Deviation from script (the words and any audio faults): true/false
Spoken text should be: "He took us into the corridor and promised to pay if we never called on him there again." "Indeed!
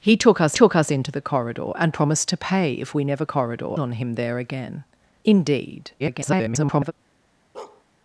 true